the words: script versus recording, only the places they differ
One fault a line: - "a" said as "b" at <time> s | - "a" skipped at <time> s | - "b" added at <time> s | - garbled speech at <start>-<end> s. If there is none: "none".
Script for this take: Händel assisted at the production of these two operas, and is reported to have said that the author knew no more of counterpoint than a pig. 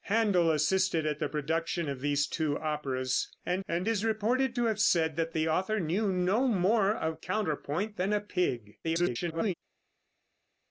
- "and" added at 3.7 s
- garbled speech at 8.8-9.5 s